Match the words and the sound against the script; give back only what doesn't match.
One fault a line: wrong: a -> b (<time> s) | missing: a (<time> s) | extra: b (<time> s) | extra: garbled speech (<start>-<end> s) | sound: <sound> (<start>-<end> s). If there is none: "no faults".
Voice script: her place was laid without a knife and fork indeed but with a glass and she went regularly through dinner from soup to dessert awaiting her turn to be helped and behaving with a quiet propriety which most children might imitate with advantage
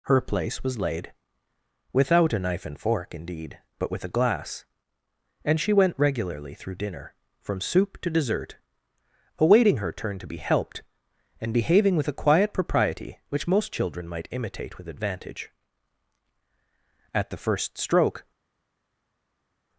extra: at the first stroke (17.1 s)